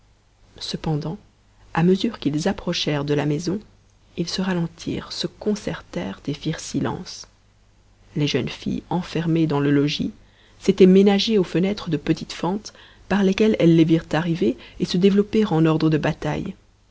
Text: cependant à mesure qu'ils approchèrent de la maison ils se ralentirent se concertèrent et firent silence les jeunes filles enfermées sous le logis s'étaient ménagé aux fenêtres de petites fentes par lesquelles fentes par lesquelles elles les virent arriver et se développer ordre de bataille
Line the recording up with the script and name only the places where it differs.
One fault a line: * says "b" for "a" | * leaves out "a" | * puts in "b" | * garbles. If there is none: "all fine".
* says "dans" for "sous"
* leaves out "fentes par lesquelles"
* puts in "en"